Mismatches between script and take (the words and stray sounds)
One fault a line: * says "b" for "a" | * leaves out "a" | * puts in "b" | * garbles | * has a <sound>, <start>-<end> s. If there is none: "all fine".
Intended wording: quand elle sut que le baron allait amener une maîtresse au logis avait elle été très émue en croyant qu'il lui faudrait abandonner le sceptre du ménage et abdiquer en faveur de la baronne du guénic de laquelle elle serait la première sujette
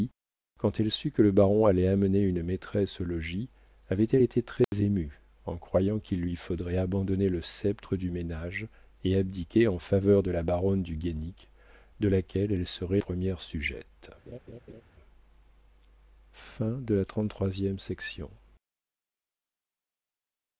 * has a dropout, 4.6-4.7 s
* leaves out "la"
* has a laugh, 14.3-14.8 s